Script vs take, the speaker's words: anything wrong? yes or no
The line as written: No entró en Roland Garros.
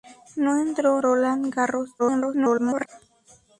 yes